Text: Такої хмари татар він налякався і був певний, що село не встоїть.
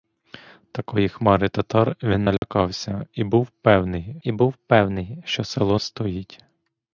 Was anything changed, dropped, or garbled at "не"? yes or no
yes